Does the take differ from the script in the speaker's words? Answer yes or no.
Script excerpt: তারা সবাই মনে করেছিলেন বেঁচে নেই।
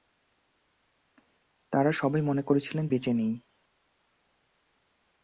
no